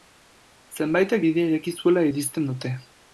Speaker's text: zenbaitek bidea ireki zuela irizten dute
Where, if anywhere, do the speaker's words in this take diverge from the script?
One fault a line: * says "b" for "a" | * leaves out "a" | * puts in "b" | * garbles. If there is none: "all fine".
all fine